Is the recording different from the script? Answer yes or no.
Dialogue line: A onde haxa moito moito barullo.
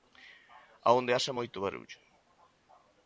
yes